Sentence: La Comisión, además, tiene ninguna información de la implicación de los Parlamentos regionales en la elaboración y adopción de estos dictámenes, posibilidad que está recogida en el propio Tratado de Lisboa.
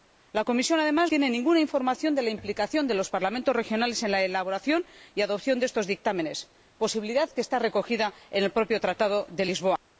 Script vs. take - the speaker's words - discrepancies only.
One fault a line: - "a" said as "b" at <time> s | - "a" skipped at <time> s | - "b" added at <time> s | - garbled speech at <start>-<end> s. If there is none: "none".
none